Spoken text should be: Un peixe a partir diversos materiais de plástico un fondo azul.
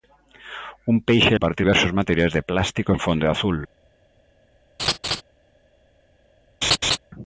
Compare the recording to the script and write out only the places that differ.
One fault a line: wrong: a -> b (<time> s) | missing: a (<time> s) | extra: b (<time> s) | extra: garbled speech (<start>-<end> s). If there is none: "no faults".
no faults